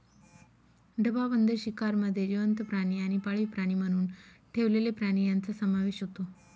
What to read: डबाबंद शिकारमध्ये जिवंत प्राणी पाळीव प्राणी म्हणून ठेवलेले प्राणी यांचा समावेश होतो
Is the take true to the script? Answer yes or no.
no